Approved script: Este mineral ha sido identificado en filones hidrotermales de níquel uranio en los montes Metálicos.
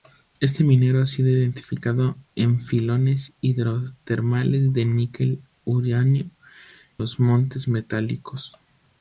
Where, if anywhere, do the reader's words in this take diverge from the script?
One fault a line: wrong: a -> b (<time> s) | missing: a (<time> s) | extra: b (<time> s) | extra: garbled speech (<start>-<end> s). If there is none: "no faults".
missing: en (6.3 s)